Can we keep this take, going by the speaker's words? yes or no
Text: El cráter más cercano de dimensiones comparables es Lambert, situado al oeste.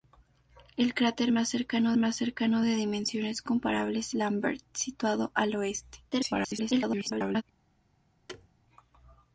no